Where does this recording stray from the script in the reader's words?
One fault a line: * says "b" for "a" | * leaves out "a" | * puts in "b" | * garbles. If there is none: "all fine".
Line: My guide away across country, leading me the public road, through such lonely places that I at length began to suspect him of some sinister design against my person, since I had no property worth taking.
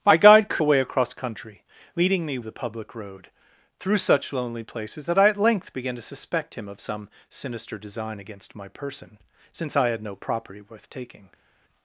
all fine